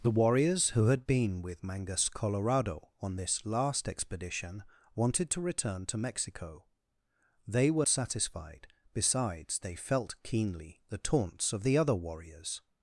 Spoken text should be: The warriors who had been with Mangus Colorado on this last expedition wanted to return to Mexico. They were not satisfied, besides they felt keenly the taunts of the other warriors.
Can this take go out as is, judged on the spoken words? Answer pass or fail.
fail